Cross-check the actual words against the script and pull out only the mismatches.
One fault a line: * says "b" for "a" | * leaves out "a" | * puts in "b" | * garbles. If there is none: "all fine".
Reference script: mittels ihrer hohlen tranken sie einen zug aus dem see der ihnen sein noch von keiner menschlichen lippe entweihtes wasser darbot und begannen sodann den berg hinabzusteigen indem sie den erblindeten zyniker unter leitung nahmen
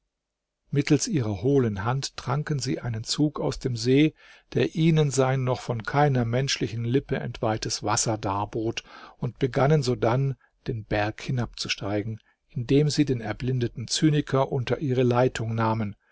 * puts in "hand"
* puts in "ihre"